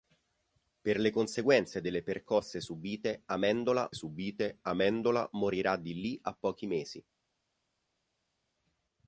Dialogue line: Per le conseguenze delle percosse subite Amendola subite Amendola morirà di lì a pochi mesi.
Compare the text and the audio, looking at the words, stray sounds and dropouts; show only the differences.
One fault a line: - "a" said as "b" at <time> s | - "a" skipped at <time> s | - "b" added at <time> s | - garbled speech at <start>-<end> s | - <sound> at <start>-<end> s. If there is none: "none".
none